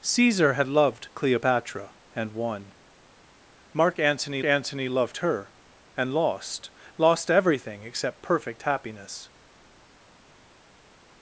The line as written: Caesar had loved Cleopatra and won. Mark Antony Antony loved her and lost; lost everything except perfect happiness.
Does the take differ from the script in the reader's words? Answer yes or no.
no